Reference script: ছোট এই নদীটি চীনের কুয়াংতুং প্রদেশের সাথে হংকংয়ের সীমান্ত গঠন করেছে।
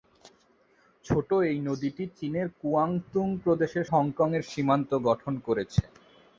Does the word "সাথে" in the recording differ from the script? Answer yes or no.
yes